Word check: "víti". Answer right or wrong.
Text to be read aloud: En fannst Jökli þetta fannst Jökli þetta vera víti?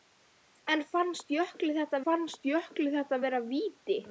right